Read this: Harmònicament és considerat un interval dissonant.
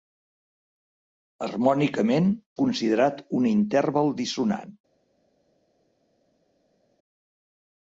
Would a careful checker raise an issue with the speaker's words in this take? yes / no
yes